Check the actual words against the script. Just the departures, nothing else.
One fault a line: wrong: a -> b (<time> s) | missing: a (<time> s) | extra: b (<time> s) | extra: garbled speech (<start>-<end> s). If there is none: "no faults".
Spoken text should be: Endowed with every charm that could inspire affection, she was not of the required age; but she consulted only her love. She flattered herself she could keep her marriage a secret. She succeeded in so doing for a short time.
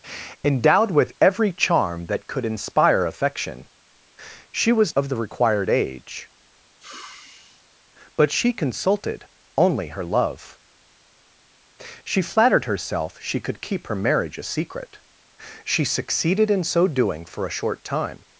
missing: not (5.0 s)